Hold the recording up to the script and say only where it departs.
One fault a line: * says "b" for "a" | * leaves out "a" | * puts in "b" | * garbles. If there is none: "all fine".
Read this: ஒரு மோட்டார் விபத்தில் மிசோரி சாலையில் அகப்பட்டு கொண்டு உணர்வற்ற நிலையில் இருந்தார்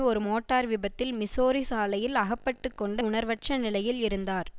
all fine